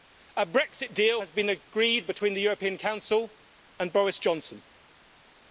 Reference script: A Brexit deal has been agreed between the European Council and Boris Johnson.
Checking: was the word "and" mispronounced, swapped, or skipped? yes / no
no